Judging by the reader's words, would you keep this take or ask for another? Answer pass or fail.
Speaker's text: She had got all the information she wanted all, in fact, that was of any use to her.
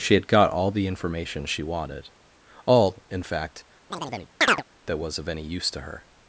pass